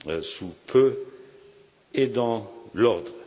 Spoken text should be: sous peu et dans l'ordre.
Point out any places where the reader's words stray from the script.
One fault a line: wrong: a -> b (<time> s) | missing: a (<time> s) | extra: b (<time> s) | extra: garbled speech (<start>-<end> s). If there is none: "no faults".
no faults